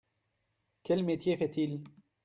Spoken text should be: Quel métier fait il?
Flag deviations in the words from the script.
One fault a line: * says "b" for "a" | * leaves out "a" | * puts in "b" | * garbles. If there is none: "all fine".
all fine